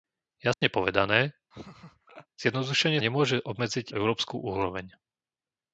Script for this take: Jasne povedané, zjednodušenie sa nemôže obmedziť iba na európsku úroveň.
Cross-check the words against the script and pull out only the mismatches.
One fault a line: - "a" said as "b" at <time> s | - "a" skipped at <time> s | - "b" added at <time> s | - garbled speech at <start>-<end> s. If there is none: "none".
- "sa" skipped at 3.0 s
- "iba na" skipped at 3.9 s